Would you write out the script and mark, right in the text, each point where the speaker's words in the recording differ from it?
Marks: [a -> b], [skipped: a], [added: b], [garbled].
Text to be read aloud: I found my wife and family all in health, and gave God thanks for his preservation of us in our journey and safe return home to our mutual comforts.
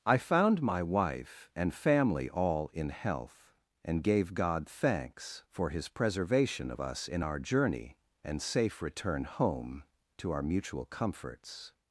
I found my wife and family all in health, and gave God thanks for his preservation of us in our journey and safe return home to our mutual comforts.